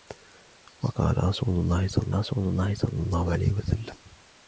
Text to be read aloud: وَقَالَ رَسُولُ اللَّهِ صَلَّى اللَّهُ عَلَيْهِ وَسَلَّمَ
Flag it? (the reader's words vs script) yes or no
yes